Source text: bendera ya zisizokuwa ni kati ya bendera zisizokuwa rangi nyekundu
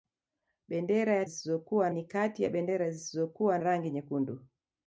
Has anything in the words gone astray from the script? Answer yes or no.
no